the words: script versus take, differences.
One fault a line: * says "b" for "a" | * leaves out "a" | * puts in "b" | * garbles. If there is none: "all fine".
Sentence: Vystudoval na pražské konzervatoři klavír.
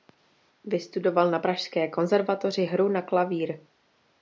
* puts in "hru na"